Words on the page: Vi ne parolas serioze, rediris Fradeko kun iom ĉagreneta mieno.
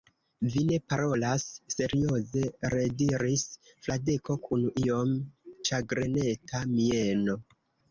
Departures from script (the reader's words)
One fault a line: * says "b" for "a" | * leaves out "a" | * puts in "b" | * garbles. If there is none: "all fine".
all fine